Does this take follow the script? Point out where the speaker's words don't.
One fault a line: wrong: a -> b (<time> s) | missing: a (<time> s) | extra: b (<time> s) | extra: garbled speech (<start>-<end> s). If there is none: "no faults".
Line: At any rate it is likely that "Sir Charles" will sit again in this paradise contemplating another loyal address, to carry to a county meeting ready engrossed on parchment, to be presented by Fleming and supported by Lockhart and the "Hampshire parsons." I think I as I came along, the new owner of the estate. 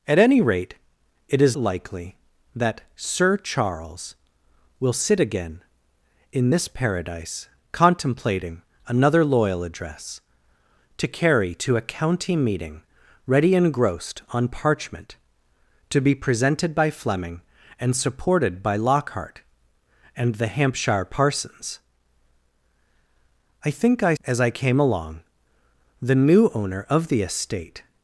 no faults